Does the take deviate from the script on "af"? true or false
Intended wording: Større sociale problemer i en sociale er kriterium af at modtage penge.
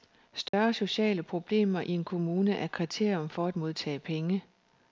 true